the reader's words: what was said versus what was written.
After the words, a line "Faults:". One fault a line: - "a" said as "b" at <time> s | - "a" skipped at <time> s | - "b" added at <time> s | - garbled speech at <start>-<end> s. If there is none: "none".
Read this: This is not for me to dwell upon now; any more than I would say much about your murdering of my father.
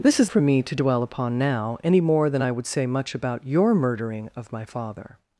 This is for me to dwell upon now; any more than I would say much about your murdering of my father.
Faults:
- "not" skipped at 0.3 s